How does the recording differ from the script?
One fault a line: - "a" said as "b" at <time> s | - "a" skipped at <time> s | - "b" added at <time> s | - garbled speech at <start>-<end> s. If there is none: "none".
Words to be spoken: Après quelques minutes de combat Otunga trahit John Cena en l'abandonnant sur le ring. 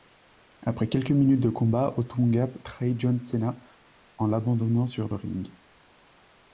none